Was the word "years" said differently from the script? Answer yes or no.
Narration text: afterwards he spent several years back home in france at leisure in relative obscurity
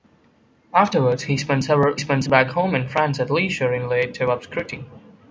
yes